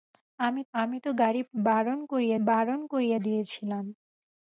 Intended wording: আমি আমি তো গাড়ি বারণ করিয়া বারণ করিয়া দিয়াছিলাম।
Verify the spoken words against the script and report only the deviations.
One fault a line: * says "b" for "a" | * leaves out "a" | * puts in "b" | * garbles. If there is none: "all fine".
all fine